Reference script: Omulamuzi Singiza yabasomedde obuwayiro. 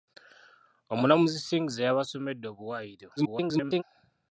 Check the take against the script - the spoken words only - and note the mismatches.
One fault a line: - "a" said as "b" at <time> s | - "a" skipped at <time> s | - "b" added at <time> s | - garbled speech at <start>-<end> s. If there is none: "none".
- garbled speech at 3.2-3.8 s